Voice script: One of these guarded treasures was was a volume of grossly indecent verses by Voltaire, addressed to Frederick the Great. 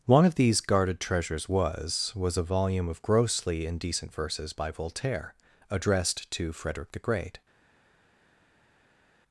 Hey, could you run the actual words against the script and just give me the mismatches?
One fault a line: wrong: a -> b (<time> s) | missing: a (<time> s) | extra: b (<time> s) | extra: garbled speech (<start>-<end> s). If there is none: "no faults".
no faults